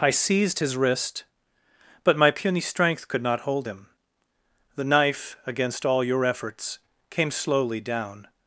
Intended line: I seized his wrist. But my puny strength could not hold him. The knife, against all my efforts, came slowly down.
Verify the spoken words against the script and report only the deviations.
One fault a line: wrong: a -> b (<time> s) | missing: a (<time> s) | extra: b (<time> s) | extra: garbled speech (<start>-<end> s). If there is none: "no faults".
wrong: my -> your (6.0 s)